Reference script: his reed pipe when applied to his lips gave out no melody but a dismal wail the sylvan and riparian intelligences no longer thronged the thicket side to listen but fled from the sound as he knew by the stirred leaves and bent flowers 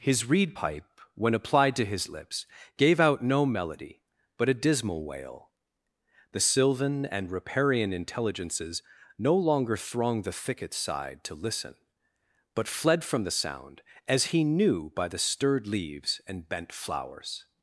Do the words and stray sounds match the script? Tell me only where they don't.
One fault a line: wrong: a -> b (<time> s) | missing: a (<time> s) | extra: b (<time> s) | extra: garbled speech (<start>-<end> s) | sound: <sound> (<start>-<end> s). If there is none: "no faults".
no faults